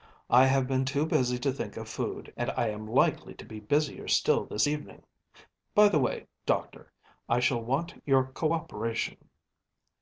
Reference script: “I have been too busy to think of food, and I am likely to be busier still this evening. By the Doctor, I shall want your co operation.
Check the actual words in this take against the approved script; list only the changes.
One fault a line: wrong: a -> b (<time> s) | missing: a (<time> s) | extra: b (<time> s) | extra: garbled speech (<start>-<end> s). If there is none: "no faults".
extra: way (6.0 s)